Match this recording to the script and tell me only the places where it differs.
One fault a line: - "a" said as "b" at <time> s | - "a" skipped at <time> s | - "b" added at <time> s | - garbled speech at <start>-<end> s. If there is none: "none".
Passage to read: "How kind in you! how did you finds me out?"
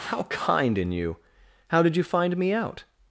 - "finds" said as "find" at 2.0 s